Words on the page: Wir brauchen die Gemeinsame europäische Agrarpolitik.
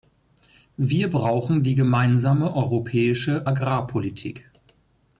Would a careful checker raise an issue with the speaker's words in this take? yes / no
no